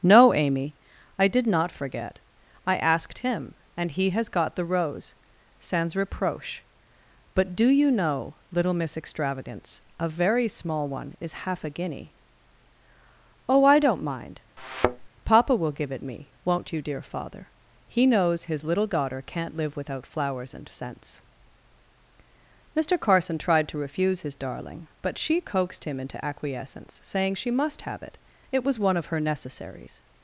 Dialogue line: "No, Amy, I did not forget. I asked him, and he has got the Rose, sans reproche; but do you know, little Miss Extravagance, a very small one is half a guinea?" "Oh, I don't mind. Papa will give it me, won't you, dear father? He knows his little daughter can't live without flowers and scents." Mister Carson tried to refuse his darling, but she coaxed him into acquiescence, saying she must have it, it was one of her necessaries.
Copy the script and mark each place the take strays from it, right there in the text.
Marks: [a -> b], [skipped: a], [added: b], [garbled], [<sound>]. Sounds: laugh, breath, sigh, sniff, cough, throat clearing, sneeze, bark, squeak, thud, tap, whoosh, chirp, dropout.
"No, Amy, I did not forget. I asked him, and he has got the Rose, sans reproche; but do you know, little Miss Extravagance, a very small one is half a guinea?" "Oh, I don't mind. [thud] Papa will give it me, won't you, dear father? He knows his little daughter can't live without flowers and scents." Mister Carson tried to refuse his darling, but she coaxed him into acquiescence, saying she must have it, it was one of her necessaries.